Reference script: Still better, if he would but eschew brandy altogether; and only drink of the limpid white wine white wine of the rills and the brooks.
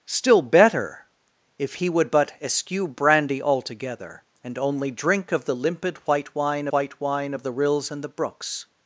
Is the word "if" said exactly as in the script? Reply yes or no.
yes